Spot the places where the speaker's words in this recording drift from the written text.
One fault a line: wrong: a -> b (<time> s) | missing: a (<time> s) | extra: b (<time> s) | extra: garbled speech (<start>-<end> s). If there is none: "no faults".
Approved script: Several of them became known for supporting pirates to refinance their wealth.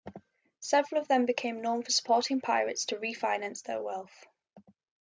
no faults